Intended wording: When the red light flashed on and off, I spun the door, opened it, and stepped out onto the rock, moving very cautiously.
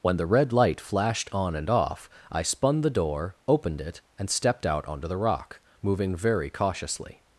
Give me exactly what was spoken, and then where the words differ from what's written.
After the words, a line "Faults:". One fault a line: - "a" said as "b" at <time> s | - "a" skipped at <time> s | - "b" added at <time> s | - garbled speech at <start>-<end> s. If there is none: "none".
When the red light flashed on and off, I spun the door, opened it, and stepped out onto the rock, moving very cautiously.
Faults:
none